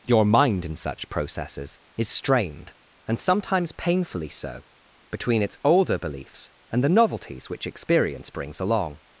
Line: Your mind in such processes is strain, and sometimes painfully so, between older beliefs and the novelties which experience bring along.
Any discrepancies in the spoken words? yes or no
yes